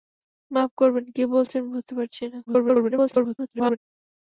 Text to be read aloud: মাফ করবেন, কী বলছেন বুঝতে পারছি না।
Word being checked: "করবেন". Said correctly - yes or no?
yes